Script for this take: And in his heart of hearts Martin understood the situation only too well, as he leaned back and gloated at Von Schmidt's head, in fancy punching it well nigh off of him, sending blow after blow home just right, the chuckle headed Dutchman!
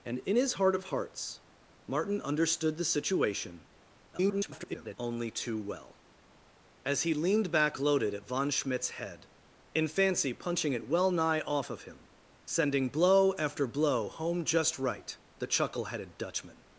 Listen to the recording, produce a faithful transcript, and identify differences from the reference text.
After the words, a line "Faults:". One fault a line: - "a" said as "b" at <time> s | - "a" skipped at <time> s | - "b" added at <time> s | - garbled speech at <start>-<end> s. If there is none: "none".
And in his heart of hearts Martin understood the situation [garbled] only too well, as he leaned back gloated at Von Schmidt's head, in fancy punching it well nigh off of him, sending blow after blow home just right, the chuckle headed Dutchman!
Faults:
- garbled speech at 4.1-5.0 s
- "and" skipped at 7.8 s